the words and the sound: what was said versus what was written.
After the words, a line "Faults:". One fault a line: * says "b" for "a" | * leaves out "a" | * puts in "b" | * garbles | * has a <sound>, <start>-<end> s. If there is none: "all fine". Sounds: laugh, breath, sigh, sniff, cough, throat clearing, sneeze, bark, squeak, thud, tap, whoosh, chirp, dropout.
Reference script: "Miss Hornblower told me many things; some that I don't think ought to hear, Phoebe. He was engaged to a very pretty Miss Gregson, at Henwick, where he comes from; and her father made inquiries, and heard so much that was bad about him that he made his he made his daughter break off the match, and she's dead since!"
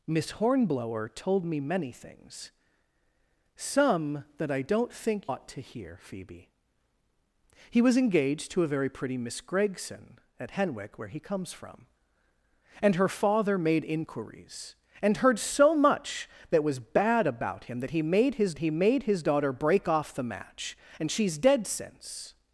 "Miss Hornblower told me many things; some that I don't think ought to hear, Phoebe. He was engaged to a very pretty Miss Gregson, at Henwick, where he comes from; and her father made inquiries, and heard so much that was bad about him that he made his he made his daughter break off the match, and she's dead since!"
Faults:
all fine